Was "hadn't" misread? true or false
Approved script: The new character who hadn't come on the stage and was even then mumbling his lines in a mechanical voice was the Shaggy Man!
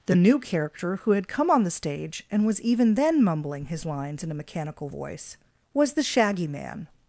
true